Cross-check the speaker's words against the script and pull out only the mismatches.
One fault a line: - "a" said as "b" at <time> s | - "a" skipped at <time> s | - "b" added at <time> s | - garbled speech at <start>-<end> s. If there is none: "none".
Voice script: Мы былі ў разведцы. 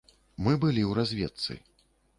none